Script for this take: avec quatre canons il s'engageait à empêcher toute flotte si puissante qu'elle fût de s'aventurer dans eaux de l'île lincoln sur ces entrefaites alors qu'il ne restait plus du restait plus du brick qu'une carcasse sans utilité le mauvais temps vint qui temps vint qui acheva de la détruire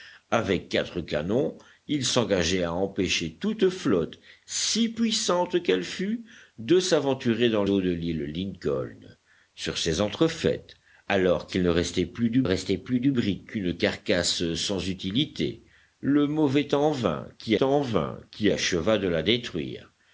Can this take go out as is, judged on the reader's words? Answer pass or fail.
pass